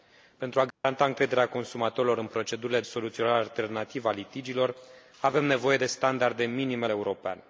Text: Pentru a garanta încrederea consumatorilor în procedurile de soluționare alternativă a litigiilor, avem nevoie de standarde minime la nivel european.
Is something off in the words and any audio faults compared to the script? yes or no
yes